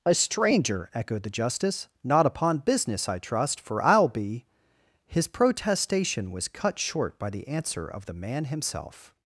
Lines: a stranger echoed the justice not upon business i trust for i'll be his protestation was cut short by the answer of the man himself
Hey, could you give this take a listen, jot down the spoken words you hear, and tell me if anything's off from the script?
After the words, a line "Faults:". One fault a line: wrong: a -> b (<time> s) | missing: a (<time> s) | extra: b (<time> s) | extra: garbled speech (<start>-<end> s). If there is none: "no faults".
a stranger echoed the justice not upon business i trust for i'll be his protestation was cut short by the answer of the man himself
Faults:
no faults